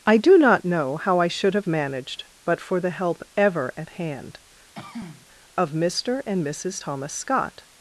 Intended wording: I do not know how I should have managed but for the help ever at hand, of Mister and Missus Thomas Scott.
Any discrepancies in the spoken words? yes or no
no